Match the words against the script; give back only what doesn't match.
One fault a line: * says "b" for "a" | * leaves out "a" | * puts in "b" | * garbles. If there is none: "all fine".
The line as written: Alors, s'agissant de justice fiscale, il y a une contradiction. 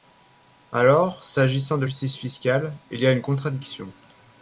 all fine